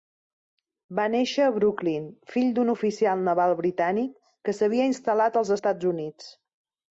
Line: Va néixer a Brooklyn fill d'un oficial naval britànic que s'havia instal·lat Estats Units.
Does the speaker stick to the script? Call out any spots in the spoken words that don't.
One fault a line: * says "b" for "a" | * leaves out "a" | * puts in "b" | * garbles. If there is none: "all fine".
* puts in "als"